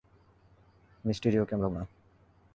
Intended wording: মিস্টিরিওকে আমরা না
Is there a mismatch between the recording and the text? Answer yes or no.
no